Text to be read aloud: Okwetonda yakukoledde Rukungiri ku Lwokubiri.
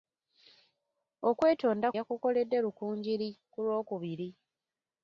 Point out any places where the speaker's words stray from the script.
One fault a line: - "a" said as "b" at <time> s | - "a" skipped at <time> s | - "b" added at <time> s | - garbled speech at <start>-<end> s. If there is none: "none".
none